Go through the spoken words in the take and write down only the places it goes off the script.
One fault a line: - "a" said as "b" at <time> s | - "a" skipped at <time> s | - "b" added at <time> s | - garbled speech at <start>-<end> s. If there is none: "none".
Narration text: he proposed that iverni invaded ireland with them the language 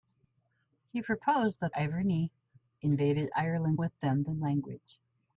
none